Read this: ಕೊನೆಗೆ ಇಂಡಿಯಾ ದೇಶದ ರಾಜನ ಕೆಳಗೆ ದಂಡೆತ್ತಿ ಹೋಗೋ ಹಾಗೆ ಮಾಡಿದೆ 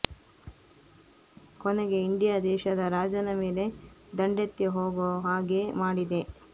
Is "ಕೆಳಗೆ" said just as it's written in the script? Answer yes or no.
no